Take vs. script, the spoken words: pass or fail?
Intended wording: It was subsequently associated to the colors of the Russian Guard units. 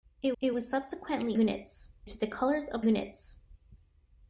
fail